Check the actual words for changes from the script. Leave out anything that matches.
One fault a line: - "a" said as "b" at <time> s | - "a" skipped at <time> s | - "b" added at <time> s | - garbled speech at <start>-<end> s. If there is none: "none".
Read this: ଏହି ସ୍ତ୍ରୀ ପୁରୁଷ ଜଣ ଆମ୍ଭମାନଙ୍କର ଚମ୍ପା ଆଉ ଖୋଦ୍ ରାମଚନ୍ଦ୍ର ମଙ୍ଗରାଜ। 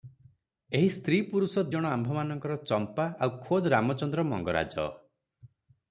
none